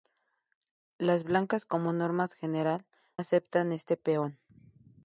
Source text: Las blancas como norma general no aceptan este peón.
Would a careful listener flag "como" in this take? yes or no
no